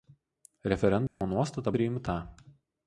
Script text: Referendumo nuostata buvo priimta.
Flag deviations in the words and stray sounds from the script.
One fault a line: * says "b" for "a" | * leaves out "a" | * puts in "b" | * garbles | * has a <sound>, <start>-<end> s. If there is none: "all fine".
* has a dropout, 1.1-1.2 s
* leaves out "buvo"